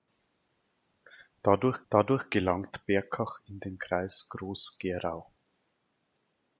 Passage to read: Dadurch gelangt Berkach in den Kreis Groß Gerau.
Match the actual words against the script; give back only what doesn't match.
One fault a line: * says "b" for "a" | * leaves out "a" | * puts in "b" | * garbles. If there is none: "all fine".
* puts in "dadurch"